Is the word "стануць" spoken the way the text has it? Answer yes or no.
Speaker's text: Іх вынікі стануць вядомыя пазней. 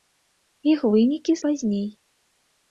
no